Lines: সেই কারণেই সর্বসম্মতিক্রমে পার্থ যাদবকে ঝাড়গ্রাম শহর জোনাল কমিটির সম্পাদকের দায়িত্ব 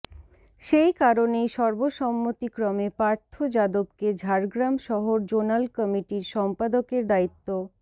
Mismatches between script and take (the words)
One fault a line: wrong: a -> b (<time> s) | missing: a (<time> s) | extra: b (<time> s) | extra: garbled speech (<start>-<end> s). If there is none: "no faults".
no faults